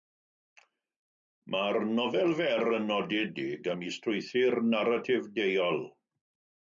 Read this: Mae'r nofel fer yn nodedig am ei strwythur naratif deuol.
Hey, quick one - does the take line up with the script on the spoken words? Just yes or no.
yes